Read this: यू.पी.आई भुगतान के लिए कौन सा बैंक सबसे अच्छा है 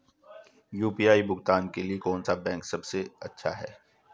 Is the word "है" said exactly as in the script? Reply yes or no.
yes